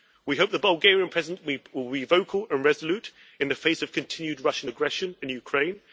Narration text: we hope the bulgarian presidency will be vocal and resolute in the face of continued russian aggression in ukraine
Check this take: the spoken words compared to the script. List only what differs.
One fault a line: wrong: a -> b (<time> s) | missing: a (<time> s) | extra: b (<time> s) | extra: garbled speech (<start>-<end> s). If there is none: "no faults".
no faults